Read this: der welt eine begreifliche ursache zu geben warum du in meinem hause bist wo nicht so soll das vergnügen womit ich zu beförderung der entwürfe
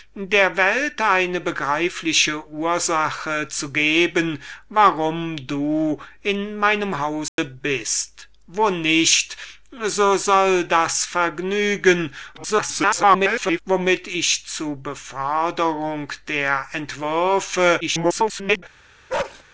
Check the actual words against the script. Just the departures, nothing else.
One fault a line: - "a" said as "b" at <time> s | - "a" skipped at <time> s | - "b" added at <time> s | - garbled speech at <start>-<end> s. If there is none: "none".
- garbled speech at 12.3-13.6 s
- garbled speech at 17.8-18.6 s